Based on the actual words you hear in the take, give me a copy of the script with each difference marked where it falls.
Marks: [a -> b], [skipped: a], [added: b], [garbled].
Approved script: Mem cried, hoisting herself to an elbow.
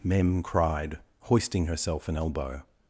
Mem cried, hoisting herself [skipped: to] an elbow.